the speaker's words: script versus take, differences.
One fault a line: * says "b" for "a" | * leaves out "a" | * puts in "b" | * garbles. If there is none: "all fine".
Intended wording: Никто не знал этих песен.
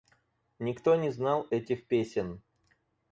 all fine